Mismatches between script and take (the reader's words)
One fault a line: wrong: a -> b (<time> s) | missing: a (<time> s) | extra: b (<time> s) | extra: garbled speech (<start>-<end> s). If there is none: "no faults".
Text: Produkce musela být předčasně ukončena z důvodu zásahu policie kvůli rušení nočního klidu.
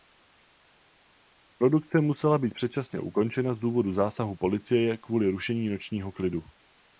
no faults